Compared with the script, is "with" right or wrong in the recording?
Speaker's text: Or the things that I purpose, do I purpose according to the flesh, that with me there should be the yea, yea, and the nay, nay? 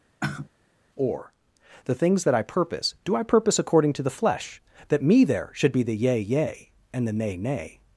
wrong